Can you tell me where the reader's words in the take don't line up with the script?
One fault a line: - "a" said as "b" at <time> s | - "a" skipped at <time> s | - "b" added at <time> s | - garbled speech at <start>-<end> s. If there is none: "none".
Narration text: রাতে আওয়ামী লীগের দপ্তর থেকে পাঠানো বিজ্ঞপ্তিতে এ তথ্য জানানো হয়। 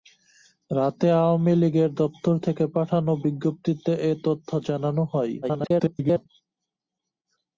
- garbled speech at 5.4-6.3 s